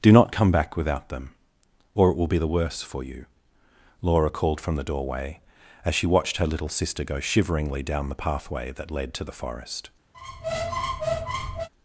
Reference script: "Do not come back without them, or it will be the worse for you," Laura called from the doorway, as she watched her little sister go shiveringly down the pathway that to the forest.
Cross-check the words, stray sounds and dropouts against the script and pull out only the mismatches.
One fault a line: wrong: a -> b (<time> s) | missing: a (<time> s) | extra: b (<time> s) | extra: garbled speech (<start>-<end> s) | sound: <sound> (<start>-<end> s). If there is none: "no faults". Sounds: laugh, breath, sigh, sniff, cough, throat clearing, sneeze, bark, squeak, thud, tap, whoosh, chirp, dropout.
extra: led (8.9 s)
sound: squeak (10.1-11.7 s)